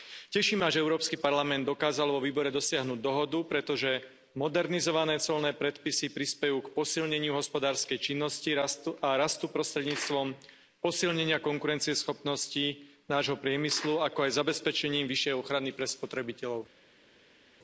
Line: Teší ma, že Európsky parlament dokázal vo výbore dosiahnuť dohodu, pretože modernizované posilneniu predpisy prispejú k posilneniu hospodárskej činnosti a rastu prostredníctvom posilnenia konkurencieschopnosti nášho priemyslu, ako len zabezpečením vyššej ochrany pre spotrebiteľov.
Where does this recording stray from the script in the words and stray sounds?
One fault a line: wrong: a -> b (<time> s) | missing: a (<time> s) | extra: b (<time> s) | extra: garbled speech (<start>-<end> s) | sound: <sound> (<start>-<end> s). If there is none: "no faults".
wrong: posilneniu -> colné (5.2 s)
wrong: len -> aj (14.2 s)